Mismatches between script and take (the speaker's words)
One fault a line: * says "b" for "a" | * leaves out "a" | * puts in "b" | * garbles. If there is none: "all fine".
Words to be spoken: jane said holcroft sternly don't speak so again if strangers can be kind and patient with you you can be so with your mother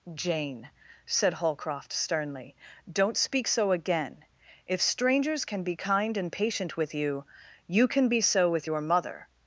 all fine